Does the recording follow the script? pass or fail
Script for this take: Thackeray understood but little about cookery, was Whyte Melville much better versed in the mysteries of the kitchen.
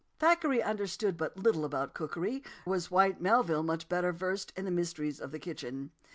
pass